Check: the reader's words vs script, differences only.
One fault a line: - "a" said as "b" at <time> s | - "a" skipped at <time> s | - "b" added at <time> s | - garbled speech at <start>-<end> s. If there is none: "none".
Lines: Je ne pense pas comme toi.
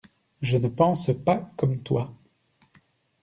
none